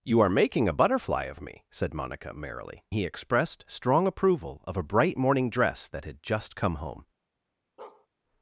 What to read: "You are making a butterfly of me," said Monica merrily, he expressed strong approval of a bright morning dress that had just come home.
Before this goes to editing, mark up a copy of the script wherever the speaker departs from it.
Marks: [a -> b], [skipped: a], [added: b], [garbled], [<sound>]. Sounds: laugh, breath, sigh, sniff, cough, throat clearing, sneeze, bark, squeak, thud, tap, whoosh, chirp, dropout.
"You are making a butterfly of me," said Monica merrily, he expressed strong approval of a bright morning dress that had just come home. [bark]